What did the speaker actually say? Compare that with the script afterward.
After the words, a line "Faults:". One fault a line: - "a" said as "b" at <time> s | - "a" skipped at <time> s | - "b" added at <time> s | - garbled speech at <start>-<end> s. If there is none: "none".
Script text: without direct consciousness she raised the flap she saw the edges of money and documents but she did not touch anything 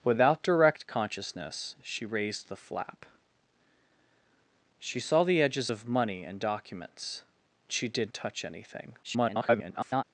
without direct consciousness she raised the flap she saw the edges of money and documents she did touch anything [garbled]
Faults:
- "but" skipped at 7.2 s
- "not" skipped at 8.1 s
- garbled speech at 9.0-10.0 s